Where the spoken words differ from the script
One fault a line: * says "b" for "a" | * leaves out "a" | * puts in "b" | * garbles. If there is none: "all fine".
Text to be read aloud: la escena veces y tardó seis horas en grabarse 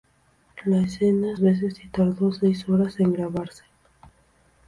all fine